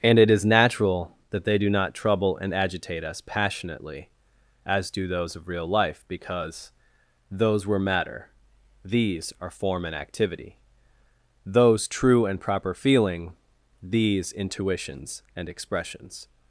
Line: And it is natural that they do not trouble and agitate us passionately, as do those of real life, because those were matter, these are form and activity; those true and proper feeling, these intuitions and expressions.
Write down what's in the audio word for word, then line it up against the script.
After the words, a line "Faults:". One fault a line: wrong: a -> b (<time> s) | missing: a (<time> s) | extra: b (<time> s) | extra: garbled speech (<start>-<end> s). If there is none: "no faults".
And it is natural that they do not trouble and agitate us passionately, as do those of real life, because those were matter, these are form and activity; those true and proper feeling, these intuitions and expressions.
Faults:
no faults